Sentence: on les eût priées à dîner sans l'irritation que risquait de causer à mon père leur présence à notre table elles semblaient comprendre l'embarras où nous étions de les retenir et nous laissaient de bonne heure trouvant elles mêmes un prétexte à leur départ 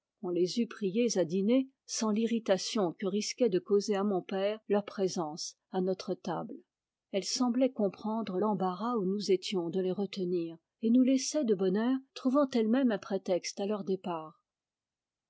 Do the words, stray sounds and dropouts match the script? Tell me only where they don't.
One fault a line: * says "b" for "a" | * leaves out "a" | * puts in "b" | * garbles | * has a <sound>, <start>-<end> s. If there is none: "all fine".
all fine